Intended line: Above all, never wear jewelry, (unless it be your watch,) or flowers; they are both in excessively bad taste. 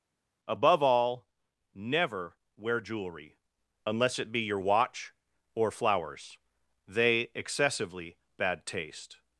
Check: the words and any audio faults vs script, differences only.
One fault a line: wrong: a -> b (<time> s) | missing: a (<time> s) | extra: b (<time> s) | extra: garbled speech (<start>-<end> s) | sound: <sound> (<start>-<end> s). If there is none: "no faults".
missing: are both in (7.3 s)